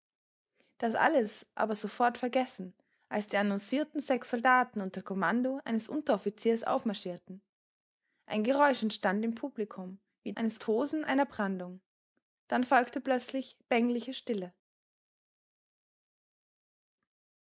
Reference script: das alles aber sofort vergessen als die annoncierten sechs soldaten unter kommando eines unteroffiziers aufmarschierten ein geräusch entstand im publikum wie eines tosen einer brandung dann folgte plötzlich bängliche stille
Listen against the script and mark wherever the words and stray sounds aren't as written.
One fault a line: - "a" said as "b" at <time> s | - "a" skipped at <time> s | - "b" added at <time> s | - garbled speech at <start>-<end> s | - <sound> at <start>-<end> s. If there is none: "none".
none